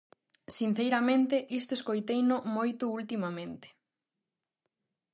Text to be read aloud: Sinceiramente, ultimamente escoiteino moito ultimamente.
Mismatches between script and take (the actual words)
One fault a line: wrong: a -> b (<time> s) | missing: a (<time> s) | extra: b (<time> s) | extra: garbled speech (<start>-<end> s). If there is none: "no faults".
wrong: ultimamente -> isto (1.6 s)